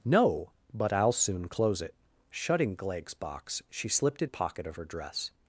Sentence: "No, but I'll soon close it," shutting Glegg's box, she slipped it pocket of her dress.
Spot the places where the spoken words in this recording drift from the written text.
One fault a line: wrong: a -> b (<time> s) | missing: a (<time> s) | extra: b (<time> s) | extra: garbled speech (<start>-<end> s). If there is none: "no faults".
no faults